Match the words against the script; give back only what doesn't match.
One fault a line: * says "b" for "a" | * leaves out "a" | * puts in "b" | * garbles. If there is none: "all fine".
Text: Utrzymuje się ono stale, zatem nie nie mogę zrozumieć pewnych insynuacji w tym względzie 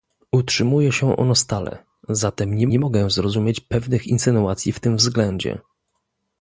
all fine